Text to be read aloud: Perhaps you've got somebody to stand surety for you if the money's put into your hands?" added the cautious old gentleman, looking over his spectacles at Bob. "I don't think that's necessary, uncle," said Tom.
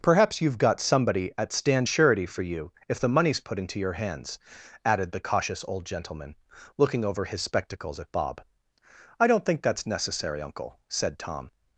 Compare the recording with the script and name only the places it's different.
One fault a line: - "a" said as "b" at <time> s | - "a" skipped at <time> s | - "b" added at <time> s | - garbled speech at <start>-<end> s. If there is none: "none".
- "to" said as "at" at 1.4 s